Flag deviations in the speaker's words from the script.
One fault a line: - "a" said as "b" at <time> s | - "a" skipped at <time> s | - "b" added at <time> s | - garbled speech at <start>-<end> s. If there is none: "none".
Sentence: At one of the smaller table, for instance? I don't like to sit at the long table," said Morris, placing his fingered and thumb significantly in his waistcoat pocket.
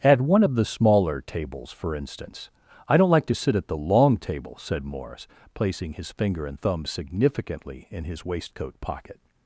- "table" said as "tables" at 1.2 s
- "fingered" said as "finger" at 6.1 s